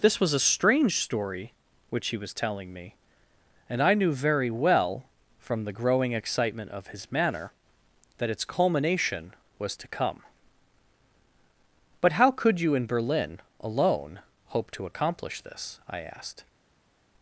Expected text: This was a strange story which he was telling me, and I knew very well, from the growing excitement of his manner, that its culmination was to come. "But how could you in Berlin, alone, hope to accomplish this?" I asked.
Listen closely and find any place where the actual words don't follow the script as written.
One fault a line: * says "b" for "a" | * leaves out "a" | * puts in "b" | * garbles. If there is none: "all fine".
all fine